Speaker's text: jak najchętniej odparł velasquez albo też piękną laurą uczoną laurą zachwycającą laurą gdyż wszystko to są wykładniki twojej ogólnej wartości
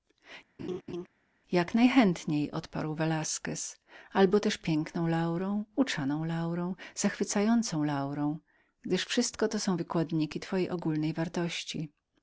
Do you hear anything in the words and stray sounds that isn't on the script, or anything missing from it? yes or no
yes